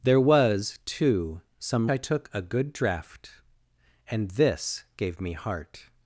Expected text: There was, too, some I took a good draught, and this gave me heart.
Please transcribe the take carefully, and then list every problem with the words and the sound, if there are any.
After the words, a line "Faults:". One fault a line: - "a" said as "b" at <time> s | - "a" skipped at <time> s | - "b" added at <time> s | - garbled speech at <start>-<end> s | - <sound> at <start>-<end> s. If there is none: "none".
There was, too, some I took a good draught, and this gave me heart.
Faults:
none